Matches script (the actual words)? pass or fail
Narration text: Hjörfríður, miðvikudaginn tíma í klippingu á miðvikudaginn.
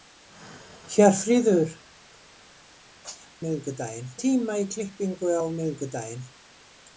pass